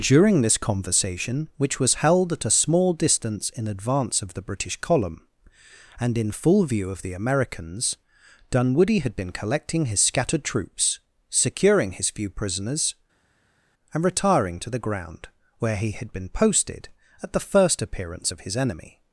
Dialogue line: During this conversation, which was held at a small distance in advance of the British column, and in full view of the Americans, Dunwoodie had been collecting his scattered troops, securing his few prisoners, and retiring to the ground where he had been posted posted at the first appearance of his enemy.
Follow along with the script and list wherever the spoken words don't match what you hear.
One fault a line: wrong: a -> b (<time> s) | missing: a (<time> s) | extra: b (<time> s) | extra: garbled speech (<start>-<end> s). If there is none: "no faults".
missing: posted (16.9 s)